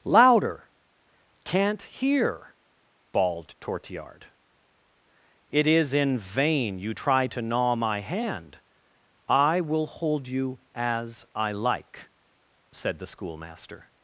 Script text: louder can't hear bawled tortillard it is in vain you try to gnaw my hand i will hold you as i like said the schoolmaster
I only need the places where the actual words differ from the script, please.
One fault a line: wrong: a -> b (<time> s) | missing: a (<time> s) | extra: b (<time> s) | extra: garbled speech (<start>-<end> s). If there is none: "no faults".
no faults